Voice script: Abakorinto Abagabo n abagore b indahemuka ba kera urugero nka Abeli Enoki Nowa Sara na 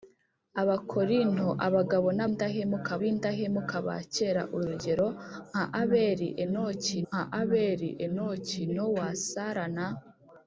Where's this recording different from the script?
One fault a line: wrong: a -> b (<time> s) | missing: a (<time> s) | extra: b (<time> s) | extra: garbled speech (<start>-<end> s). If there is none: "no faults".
wrong: abagore -> indahemuka (2.3 s)
extra: nka Abeli Enoki (7.1 s)